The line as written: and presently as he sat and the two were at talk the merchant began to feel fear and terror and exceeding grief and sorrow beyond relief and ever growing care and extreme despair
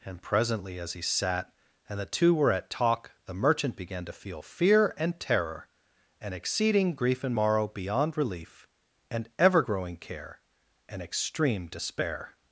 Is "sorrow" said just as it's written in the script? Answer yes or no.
no